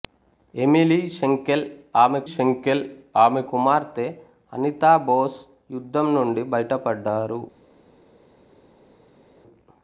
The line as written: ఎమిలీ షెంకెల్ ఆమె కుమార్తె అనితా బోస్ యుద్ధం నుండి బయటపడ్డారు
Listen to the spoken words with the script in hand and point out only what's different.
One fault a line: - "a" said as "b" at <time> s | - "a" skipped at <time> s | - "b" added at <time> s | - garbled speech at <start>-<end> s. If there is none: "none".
- "షెంకెల్ ఆమె" added at 2.3 s